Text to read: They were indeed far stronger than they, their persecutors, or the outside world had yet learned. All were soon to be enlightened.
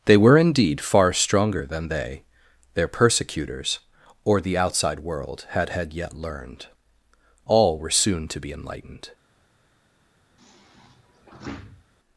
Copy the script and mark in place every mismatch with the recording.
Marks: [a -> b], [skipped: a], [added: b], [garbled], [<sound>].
They were indeed far stronger than they, their persecutors, or the outside world had [added: had] yet learned. All were soon to be enlightened. [sigh]